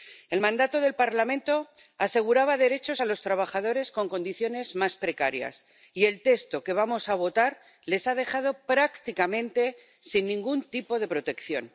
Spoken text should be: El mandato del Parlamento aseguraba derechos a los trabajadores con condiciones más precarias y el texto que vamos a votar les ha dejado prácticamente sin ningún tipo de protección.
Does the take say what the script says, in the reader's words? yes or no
yes